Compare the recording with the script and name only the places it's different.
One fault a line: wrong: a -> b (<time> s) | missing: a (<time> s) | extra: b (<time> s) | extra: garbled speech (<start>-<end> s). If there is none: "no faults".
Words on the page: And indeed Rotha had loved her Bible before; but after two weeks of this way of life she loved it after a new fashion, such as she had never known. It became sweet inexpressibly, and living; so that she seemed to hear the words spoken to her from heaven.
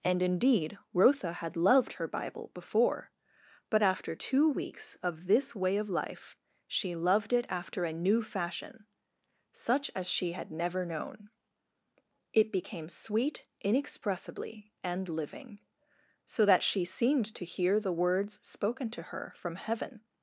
no faults